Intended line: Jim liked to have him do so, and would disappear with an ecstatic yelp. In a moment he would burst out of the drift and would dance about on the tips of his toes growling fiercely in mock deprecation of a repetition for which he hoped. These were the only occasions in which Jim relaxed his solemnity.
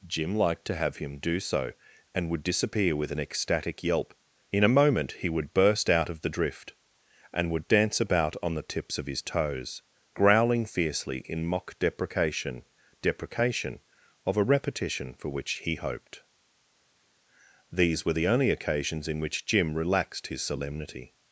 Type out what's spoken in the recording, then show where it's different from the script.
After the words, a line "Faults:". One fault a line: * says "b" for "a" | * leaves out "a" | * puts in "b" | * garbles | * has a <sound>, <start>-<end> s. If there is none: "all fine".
Jim liked to have him do so, and would disappear with an ecstatic yelp. In a moment he would burst out of the drift and would dance about on the tips of his toes growling fiercely in mock deprecation deprecation of a repetition for which he hoped. These were the only occasions in which Jim relaxed his solemnity.
Faults:
* puts in "deprecation"